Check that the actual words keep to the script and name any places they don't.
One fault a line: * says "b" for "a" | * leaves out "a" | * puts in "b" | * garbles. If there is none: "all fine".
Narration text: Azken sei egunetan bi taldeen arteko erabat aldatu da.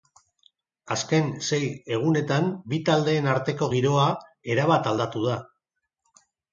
* puts in "giroa"